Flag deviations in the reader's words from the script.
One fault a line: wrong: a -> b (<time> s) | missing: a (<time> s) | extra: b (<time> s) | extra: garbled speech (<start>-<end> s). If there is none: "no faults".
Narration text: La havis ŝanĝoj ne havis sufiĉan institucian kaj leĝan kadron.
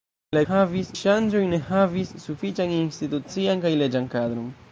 no faults